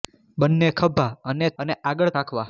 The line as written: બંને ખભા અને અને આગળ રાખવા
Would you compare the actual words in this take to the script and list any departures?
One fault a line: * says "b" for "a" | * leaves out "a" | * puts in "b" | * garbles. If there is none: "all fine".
all fine